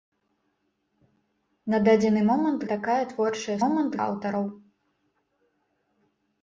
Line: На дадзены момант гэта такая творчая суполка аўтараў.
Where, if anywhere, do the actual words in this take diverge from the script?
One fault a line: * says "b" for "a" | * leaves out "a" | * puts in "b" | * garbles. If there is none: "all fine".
* leaves out "гэта"
* says "момант" for "суполка"